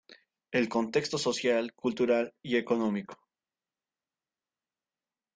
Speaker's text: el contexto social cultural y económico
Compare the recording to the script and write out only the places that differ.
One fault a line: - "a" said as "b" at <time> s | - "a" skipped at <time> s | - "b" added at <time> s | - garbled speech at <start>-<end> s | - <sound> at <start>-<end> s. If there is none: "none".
none